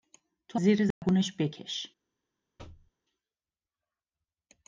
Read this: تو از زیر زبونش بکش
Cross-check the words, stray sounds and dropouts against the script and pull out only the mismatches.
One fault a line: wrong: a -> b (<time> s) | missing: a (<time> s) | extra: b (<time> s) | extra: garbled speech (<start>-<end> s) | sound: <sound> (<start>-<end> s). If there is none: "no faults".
missing: از (0.6 s)
sound: dropout (0.9-1.0 s)
sound: thud (2.6-2.9 s)